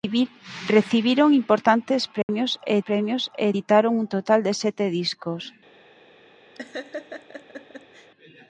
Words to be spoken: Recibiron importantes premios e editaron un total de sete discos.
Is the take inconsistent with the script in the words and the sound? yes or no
yes